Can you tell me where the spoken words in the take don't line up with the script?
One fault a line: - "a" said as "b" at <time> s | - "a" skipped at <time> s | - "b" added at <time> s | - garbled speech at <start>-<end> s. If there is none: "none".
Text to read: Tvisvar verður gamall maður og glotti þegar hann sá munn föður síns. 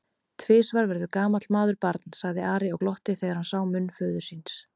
- "barn sagði Ari" added at 1.9 s